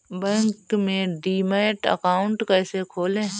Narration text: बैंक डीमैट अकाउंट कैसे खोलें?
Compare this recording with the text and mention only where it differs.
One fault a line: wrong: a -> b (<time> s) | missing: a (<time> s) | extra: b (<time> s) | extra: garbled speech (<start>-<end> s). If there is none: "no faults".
extra: में (0.8 s)